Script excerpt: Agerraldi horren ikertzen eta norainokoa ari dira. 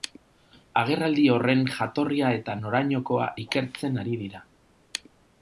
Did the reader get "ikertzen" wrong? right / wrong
wrong